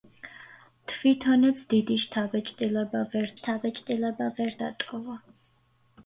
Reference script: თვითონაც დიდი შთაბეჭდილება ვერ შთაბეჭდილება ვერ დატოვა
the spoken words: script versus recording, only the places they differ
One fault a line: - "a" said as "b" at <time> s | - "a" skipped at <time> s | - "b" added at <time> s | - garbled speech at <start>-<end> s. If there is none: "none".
none